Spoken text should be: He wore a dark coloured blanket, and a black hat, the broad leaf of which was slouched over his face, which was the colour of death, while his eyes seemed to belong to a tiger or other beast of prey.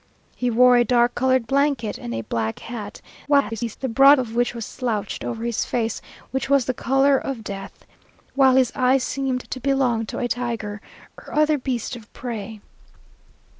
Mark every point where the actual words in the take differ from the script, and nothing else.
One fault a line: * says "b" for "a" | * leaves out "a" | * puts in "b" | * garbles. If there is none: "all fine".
* garbles
* leaves out "leaf"